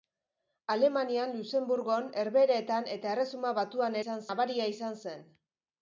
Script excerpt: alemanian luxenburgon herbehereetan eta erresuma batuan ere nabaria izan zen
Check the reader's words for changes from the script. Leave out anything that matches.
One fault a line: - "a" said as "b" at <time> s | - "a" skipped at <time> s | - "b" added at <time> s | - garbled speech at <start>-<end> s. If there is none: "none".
- "ere" said as "izan" at 4.0 s